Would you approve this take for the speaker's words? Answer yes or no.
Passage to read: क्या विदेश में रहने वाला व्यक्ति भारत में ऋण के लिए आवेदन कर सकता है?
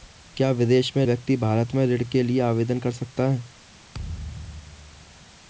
no